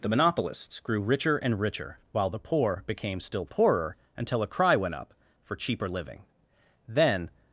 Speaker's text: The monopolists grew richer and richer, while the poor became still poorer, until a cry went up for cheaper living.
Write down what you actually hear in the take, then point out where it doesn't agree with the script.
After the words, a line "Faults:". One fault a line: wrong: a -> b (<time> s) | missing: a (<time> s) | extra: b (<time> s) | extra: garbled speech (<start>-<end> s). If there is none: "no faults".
The monopolists grew richer and richer, while the poor became still poorer, until a cry went up for cheaper living. Then
Faults:
extra: Then (6.9 s)